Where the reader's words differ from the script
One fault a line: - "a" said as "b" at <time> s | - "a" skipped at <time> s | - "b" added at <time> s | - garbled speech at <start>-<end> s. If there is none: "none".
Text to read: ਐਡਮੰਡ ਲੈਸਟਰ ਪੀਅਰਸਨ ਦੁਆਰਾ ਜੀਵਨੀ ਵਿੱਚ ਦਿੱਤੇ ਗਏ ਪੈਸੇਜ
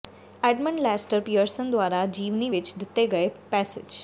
none